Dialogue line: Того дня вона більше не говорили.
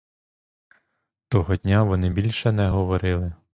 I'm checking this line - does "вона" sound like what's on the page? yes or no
no